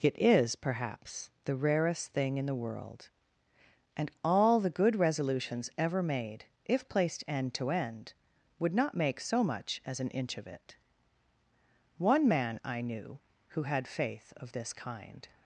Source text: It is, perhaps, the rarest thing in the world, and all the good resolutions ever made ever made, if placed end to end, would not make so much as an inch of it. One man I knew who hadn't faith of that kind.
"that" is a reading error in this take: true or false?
true